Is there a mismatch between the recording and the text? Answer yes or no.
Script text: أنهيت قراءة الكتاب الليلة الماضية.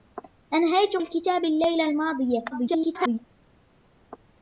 yes